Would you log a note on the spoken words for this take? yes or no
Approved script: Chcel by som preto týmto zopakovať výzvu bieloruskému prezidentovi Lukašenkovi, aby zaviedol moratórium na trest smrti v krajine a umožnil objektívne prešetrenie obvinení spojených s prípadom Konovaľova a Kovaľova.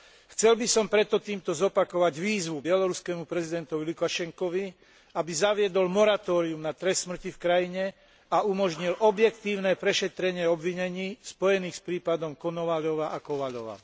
no